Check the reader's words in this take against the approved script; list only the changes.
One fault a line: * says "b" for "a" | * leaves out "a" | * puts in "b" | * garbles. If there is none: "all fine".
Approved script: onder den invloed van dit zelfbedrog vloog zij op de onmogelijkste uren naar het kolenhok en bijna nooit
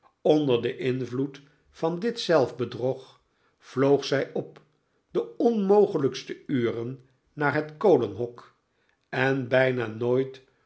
all fine